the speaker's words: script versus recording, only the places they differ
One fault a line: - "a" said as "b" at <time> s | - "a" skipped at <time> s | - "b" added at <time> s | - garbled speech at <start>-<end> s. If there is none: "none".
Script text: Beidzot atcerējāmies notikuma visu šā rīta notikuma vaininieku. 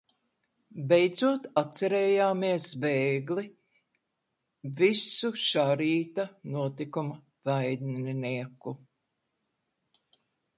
- "notikuma" said as "bēgli" at 2.8 s